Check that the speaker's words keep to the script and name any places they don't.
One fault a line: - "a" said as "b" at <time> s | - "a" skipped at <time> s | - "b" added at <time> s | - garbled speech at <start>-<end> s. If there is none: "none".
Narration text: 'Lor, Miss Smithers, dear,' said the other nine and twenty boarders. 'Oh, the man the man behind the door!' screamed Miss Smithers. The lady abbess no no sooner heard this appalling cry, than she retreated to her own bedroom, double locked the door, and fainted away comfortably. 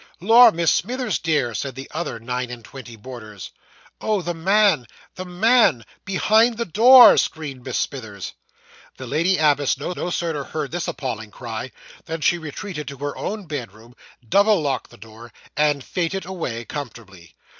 none